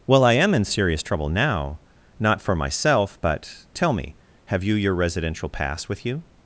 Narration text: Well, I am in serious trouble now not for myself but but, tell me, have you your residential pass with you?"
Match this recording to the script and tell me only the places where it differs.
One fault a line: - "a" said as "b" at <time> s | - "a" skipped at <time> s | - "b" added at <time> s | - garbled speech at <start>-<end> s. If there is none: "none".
- "but" skipped at 3.6 s